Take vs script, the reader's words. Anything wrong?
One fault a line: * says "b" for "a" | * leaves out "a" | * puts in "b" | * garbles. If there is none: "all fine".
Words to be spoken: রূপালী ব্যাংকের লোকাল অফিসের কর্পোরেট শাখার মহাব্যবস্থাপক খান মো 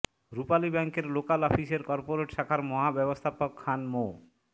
all fine